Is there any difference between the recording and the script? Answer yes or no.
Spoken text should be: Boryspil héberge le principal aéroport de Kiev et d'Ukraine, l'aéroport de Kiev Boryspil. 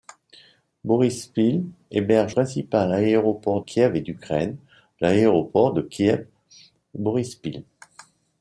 yes